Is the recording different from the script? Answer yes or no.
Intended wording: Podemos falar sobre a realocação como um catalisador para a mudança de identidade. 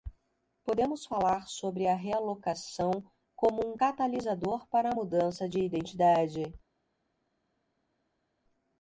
no